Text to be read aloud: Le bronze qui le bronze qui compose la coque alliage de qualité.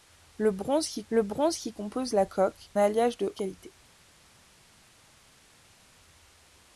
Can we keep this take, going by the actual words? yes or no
yes